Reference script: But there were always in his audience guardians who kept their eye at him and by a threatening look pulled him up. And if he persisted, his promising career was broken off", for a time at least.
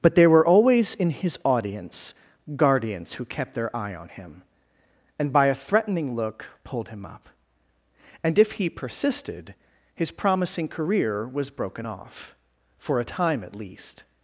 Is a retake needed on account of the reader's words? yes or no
yes